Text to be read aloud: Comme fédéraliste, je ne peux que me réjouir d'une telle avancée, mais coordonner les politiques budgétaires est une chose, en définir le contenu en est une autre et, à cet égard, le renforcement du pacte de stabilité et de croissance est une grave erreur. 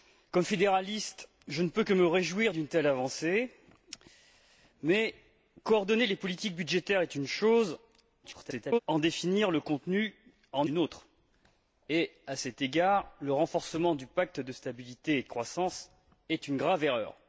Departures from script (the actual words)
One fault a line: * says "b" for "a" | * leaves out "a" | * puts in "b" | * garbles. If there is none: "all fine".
* garbles
* leaves out "est"